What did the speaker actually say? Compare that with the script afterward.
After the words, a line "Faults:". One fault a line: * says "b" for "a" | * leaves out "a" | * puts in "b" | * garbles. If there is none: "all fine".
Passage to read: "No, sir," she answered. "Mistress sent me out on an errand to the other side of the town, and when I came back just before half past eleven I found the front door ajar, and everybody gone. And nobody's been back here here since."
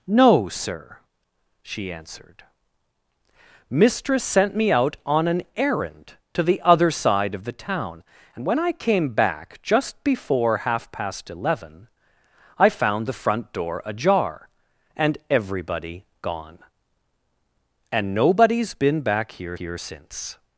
"No, sir," she answered. "Mistress sent me out on an errand to the other side of the town, and when I came back just before half past eleven I found the front door ajar, and everybody gone. And nobody's been back here here since."
Faults:
all fine